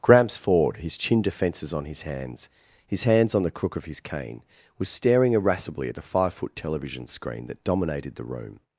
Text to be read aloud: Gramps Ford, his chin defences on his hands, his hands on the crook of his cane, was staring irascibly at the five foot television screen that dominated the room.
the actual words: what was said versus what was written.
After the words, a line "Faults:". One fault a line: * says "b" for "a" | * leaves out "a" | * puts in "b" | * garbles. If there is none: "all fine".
Gramps Ford, his chin defences on his hands, his hands on the crook of his cane, was staring irascibly at the five foot television screen that dominated the room.
Faults:
all fine